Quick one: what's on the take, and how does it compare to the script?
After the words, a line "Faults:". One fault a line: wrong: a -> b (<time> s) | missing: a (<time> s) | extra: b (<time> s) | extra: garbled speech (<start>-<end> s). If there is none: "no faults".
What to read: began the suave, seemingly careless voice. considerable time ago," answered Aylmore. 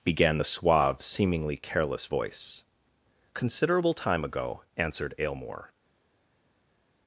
began the suave, seemingly careless voice. considerable time ago," answered Aylmore.
Faults:
no faults